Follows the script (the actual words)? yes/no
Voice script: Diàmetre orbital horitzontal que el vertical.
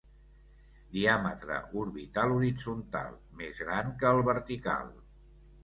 no